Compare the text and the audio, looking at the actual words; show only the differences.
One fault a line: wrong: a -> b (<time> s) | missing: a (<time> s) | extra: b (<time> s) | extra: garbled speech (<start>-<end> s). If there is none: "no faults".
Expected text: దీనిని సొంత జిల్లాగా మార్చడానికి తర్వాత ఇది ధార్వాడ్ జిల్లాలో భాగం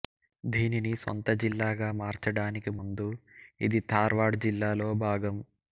wrong: తర్వాత -> ముందు (2.8 s)